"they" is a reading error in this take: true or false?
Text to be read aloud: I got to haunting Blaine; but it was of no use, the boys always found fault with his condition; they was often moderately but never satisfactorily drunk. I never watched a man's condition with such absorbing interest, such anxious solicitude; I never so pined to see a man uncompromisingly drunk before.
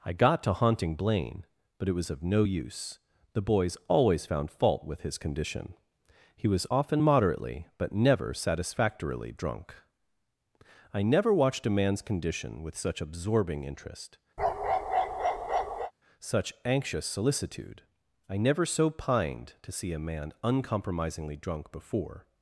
true